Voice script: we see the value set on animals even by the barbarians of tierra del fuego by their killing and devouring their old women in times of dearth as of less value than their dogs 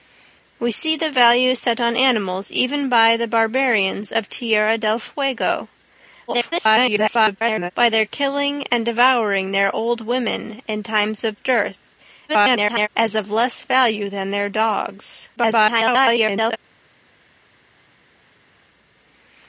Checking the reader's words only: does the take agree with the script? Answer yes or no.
no